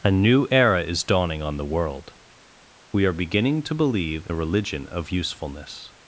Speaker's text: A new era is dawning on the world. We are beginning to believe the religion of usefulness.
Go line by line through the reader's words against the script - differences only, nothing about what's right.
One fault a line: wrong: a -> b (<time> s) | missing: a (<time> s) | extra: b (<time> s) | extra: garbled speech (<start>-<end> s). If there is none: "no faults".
no faults